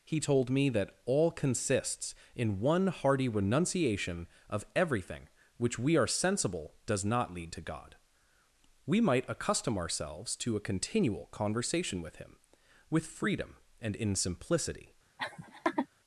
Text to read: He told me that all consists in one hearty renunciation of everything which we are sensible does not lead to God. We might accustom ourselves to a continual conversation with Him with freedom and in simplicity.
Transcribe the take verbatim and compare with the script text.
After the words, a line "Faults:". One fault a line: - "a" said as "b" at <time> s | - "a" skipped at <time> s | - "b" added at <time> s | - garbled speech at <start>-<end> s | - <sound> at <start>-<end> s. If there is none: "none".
He told me that all consists in one hearty renunciation of everything which we are sensible does not lead to God. We might accustom ourselves to a continual conversation with Him with freedom and in simplicity.
Faults:
- laugh at 15.2-15.9 s